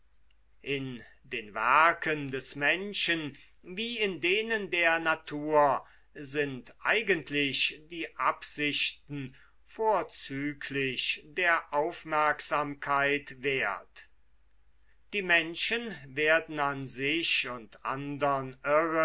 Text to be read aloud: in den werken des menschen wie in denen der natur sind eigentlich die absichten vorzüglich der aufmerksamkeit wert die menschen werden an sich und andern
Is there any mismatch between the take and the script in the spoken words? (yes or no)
no